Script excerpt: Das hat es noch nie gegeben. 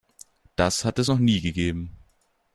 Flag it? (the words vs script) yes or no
no